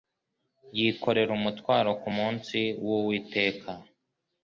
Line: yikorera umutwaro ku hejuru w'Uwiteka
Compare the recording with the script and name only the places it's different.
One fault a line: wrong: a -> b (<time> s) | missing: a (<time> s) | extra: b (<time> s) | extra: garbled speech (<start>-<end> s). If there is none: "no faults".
wrong: hejuru -> munsi (2.2 s)